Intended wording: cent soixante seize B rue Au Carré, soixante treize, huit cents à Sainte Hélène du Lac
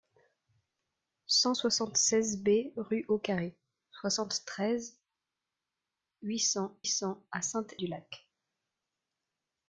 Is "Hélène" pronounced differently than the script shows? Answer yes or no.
yes